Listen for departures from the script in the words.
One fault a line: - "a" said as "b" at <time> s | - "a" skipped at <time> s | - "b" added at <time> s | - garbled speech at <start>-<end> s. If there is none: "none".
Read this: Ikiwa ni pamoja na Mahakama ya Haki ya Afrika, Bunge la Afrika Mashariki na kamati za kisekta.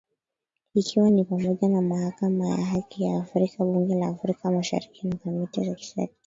none